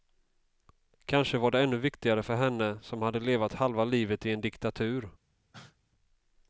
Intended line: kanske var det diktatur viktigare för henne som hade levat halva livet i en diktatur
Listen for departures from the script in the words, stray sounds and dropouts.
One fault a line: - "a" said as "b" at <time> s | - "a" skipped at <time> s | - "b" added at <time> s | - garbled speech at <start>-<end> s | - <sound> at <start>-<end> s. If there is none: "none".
- "diktatur" said as "ännu" at 1.6 s
- cough at 5.5-5.8 s